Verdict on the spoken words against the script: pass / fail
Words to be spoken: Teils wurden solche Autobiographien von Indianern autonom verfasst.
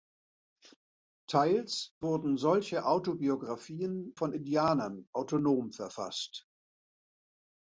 pass